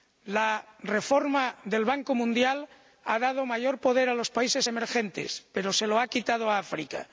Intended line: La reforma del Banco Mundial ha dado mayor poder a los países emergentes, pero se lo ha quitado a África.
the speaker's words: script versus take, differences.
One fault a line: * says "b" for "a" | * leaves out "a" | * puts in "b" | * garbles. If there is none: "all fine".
all fine